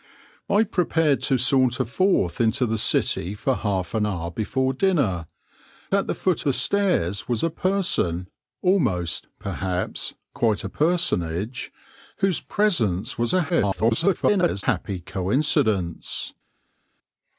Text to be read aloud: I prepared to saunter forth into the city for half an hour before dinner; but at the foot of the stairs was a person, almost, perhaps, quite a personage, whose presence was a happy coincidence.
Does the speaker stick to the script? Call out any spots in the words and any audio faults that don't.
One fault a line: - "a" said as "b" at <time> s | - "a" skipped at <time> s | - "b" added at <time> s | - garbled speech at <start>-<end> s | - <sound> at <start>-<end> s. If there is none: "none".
- "but" skipped at 5.3 s
- "of" skipped at 6.4 s
- garbled speech at 13.5-14.6 s